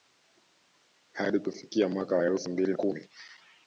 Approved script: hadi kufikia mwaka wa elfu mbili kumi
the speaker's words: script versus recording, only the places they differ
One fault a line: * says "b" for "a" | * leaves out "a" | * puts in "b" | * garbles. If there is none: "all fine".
all fine